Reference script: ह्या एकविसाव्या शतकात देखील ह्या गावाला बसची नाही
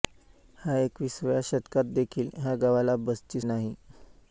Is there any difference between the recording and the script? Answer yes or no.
no